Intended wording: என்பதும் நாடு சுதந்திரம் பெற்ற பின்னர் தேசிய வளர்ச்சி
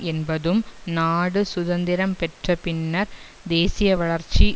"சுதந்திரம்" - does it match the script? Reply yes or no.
yes